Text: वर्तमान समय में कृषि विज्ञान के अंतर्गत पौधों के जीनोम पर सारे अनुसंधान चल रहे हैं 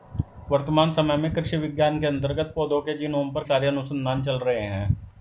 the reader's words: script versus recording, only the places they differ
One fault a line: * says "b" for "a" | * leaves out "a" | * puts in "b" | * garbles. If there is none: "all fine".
all fine